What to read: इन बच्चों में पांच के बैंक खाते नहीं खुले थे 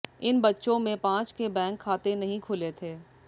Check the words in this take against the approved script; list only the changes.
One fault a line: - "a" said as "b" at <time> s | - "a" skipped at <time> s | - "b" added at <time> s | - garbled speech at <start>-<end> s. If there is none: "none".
none